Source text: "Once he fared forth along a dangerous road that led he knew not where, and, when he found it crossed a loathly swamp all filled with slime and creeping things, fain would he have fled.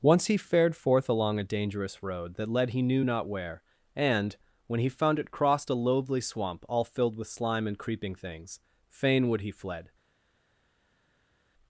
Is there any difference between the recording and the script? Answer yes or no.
yes